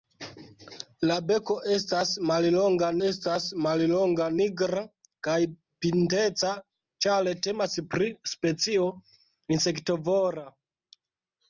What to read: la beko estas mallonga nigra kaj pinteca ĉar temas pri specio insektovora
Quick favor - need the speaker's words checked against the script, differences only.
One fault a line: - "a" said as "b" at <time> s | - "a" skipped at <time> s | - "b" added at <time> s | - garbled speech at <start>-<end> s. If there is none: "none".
- "estas mallonga" added at 3.1 s